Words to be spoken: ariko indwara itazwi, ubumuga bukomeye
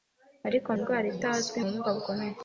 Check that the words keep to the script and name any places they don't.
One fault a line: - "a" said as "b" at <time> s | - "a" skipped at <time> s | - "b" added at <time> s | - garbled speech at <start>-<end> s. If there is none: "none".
none